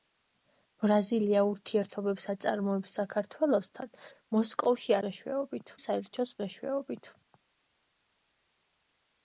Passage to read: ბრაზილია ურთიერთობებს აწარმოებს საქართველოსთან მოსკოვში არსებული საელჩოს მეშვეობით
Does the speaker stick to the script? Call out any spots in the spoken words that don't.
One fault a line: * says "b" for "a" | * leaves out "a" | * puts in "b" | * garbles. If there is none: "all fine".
* says "მეშვეობით" for "არსებული"